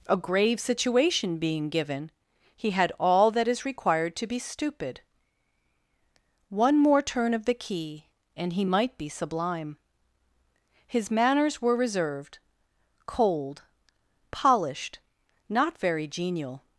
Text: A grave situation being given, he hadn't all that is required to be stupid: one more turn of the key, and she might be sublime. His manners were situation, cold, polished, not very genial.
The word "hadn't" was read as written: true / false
false